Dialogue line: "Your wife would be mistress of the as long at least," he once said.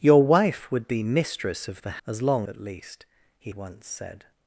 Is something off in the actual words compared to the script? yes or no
no